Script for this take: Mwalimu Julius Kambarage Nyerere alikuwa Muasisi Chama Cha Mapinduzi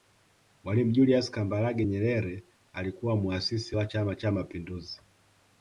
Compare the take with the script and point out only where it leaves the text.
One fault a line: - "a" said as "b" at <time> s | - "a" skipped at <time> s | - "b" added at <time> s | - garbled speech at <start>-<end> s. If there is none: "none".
- "wa" added at 3.7 s